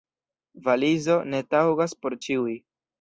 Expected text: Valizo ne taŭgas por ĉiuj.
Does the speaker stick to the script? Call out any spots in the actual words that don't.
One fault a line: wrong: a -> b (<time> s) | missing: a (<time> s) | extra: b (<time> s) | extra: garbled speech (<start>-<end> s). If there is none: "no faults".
no faults